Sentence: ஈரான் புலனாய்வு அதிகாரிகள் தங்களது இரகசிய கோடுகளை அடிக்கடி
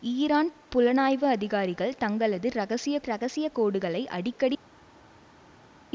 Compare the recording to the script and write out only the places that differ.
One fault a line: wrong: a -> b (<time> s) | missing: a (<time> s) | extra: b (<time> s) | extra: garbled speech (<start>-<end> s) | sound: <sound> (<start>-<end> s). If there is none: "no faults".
extra: இரகசிய (3.0 s)